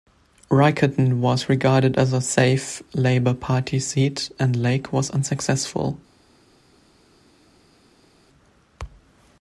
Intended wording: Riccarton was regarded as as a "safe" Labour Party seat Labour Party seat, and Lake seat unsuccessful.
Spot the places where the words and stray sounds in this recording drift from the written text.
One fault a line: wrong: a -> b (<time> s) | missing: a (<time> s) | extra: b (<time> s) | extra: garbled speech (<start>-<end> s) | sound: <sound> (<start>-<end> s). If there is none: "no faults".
missing: as (2.1 s)
missing: Labour Party seat (4.3 s)
wrong: seat -> was (4.9 s)